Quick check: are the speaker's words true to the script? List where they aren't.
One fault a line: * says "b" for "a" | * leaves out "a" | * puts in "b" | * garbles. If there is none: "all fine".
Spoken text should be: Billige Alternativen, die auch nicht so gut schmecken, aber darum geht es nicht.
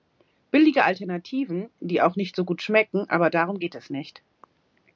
all fine